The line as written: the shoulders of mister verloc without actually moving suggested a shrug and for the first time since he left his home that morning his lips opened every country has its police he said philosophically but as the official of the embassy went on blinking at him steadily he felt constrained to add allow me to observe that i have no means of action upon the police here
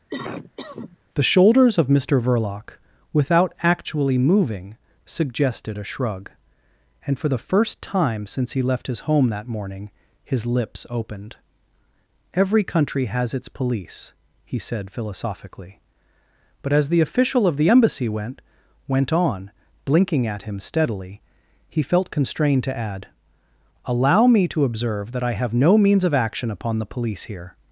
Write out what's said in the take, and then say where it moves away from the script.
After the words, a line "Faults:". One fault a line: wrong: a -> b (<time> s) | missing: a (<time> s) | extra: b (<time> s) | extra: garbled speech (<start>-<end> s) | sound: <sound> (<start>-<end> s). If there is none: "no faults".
the shoulders of mister verloc without actually moving suggested a shrug and for the first time since he left his home that morning his lips opened every country has its police he said philosophically but as the official of the embassy went went on blinking at him steadily he felt constrained to add allow me to observe that i have no means of action upon the police here
Faults:
sound: cough (0.1-1.0 s)
extra: went (18.9 s)